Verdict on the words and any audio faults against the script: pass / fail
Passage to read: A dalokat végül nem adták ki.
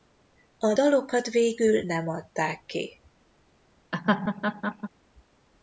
fail